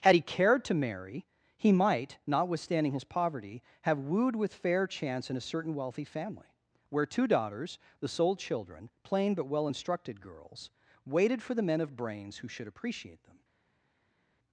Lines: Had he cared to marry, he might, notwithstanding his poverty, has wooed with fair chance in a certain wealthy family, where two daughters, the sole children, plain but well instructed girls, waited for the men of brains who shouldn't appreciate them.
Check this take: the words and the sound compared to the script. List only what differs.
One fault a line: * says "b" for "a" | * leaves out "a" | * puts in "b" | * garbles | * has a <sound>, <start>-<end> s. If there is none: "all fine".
* says "have" for "has"
* says "should" for "shouldn't"